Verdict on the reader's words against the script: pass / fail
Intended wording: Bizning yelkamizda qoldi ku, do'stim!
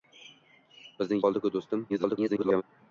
fail